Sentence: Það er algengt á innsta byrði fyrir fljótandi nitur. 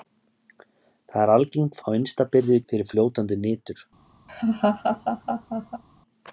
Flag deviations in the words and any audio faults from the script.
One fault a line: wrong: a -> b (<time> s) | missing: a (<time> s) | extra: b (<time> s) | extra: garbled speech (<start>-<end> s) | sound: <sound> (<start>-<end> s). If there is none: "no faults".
sound: laugh (4.3-5.8 s)